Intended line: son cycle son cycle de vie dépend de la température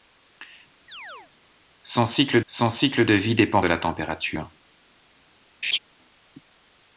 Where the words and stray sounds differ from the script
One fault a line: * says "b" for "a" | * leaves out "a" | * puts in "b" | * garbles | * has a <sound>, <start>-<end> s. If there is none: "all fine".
* has a chirp, 0.9-1.3 s
* has a laugh, 5.6-5.8 s